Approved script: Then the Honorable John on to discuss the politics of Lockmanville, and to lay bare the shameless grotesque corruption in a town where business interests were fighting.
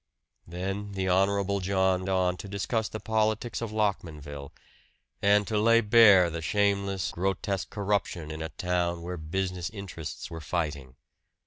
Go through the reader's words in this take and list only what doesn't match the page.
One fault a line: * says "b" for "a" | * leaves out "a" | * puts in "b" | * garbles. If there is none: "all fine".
all fine